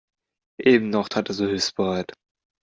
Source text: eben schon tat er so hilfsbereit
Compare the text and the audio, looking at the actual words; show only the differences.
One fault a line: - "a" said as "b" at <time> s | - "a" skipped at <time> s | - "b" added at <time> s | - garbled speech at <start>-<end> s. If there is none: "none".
- "schon" said as "noch" at 0.9 s